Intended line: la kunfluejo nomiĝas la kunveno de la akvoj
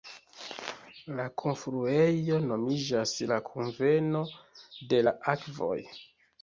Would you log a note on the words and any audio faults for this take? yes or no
no